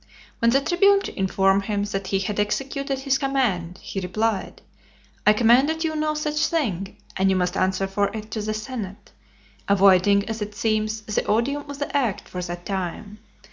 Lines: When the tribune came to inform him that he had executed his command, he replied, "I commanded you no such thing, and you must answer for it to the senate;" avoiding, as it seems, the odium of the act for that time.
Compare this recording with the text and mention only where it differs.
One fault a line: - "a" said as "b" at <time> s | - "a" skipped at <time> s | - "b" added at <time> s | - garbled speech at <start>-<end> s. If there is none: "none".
- "came" skipped at 1.0 s